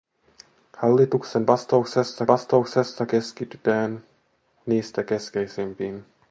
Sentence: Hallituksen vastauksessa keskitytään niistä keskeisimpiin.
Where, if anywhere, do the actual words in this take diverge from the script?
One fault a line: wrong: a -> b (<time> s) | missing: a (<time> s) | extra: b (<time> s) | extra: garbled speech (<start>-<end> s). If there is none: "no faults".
extra: vastauksessa (2.3 s)